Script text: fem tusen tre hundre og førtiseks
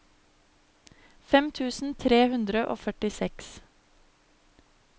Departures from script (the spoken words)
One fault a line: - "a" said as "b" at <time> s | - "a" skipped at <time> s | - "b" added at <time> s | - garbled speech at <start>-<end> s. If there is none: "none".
none